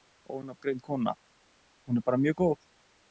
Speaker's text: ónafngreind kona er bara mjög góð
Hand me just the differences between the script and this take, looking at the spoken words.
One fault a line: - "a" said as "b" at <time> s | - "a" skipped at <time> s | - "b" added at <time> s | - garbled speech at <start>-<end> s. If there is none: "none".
- "hún" added at 1.9 s